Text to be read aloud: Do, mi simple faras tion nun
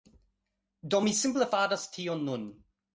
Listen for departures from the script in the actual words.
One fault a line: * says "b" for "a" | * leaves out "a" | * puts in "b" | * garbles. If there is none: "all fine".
all fine